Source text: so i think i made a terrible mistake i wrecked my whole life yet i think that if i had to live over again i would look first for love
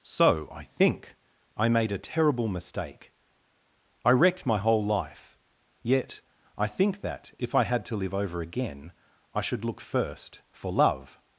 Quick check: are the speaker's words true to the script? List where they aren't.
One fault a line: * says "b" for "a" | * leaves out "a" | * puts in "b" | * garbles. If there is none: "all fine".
* says "should" for "would"